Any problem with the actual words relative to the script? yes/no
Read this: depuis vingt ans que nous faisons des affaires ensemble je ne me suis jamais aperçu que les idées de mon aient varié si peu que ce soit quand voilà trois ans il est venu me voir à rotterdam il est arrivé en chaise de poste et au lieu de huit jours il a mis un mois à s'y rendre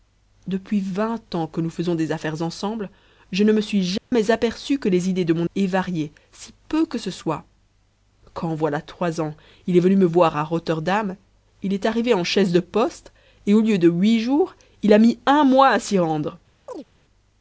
no